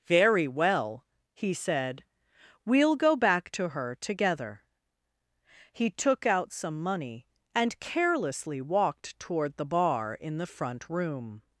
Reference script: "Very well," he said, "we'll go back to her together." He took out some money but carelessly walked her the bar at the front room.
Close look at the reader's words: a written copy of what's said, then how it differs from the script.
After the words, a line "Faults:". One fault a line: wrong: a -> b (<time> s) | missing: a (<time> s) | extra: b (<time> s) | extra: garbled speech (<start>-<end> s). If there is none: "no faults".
"Very well," he said, "we'll go back to her together." He took out some money and carelessly walked toward the bar in the front room.
Faults:
wrong: but -> and (7.5 s)
wrong: her -> toward (9.2 s)
wrong: at -> in (10.2 s)